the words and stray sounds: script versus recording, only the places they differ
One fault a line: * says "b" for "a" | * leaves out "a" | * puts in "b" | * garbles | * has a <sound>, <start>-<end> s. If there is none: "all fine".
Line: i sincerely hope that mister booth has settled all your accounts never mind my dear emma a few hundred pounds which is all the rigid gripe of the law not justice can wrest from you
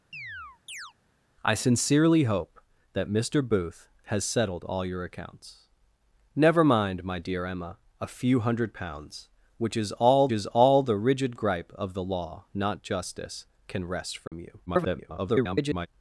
* has a chirp, 0.1-0.9 s
* puts in "is all"
* has a dropout, 14.3-14.3 s
* garbles